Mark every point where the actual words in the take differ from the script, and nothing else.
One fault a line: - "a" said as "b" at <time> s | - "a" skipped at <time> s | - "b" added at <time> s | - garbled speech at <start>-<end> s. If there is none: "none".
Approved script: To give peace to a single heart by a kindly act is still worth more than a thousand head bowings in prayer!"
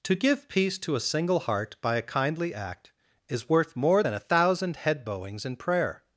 - "still" skipped at 3.5 s